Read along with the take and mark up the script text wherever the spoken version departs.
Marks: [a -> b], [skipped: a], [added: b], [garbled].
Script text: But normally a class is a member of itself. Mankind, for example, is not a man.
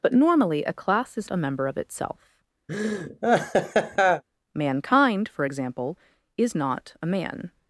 But normally a class is a member of itself. Mankind, for example, is not a man.